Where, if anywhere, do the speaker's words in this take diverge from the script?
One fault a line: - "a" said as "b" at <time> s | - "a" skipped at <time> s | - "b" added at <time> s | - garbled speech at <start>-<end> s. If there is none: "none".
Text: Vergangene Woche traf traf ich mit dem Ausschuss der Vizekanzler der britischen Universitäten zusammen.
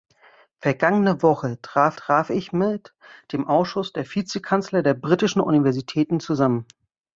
none